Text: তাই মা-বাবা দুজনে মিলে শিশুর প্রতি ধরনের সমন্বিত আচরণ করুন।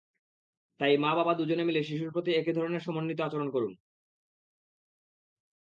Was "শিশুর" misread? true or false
false